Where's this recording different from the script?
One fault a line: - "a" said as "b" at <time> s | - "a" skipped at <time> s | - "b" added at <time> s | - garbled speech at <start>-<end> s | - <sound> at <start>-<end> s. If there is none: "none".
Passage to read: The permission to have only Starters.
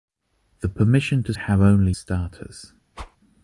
- whoosh at 2.9-3.2 s